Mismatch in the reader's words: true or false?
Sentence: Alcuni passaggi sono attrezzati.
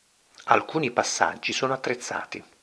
false